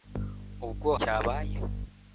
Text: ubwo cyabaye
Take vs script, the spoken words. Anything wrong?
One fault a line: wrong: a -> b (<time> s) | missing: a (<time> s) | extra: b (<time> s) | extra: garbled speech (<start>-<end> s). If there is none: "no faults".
no faults